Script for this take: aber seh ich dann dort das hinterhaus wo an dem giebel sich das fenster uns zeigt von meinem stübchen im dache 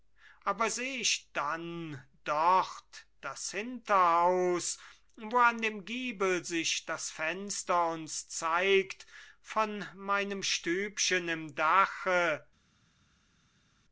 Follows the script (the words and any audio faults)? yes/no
yes